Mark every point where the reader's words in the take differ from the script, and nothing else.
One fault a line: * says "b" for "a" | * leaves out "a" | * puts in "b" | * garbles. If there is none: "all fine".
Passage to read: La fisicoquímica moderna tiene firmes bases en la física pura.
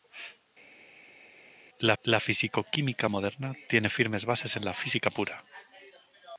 * puts in "la"